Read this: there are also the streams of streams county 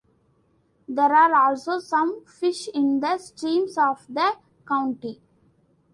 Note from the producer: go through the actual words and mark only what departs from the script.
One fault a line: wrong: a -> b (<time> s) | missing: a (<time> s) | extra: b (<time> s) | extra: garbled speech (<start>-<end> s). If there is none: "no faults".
extra: some fish in (1.8 s)
wrong: streams -> the (4.1 s)